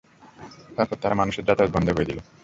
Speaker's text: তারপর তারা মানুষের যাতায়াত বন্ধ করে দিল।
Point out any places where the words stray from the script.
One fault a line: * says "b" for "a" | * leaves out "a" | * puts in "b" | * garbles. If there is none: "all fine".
all fine